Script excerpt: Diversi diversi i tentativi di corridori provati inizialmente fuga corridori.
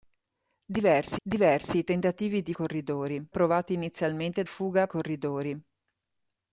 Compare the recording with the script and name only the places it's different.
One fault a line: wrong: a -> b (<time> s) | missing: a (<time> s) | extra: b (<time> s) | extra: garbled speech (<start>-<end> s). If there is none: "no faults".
no faults